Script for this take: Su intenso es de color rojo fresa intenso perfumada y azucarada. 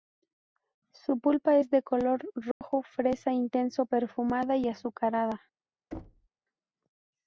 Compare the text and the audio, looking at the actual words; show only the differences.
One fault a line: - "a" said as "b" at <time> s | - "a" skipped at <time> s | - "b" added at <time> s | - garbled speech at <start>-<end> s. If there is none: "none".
- "intenso" said as "pulpa" at 1.2 s